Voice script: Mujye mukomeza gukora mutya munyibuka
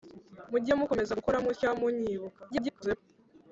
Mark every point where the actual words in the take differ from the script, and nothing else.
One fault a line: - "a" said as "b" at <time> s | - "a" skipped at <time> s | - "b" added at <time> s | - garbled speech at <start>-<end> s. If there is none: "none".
- garbled speech at 2.5-3.0 s